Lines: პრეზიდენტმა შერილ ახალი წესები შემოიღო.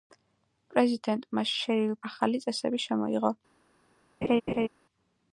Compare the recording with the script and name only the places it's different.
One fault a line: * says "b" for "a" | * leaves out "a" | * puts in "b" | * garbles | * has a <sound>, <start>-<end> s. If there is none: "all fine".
* has a laugh, 4.2-4.7 s